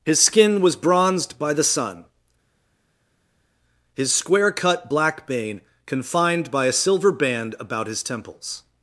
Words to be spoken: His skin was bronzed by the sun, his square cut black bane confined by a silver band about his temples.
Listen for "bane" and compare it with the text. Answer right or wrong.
right